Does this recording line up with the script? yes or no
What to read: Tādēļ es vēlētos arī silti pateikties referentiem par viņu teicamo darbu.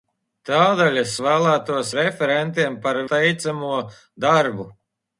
no